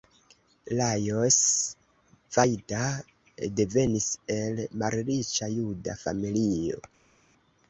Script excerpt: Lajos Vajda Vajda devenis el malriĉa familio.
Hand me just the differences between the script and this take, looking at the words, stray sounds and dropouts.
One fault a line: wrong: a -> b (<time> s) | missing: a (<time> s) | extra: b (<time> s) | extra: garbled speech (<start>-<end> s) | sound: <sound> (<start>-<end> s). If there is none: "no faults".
missing: Vajda (2.8 s)
extra: juda (5.6 s)